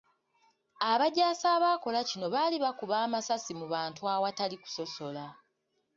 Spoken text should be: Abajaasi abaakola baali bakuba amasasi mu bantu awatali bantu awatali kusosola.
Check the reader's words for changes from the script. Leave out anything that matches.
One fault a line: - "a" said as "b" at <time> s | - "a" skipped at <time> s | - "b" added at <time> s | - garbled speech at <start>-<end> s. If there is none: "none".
- "kino" added at 2.1 s
- "bantu awatali" skipped at 4.5 s